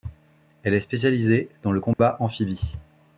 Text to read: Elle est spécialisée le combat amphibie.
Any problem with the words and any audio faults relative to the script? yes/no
yes